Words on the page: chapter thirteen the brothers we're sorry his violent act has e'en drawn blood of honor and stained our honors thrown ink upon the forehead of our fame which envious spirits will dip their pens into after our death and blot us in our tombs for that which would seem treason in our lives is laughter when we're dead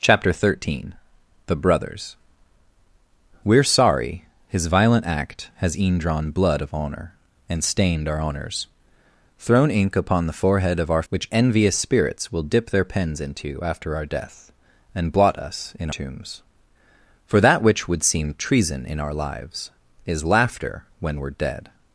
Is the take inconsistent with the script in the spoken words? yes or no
yes